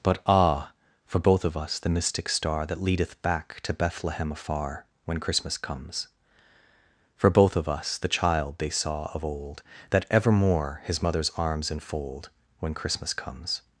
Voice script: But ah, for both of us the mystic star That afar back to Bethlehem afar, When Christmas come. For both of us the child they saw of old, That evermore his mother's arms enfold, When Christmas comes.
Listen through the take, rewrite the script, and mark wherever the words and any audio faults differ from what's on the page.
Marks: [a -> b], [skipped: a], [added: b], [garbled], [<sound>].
But ah, for both of us the mystic star That [afar -> leadeth] back to Bethlehem afar, When Christmas [come. -> comes] For both of us the child they saw of old, That evermore his mother's arms enfold, When Christmas comes.